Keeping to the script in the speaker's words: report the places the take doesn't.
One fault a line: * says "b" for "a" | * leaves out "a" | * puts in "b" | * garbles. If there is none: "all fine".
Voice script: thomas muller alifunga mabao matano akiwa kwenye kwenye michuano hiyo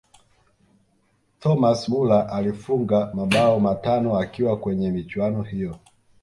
* leaves out "kwenye"